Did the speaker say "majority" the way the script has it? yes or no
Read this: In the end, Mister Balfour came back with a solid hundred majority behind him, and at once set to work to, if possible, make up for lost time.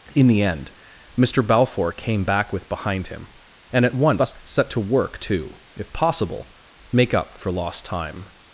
no